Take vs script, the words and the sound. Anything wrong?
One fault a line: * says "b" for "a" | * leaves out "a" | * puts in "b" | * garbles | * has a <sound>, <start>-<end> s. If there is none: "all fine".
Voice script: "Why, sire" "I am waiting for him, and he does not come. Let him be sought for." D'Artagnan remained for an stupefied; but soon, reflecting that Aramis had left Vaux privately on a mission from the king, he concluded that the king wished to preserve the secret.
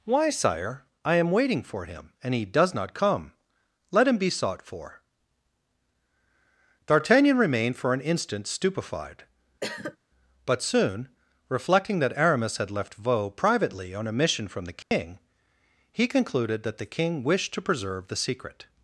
* puts in "instant"
* has a cough, 9.6-10.0 s
* has a dropout, 14.8-14.9 s